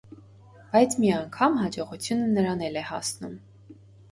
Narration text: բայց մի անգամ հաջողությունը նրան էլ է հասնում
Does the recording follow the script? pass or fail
pass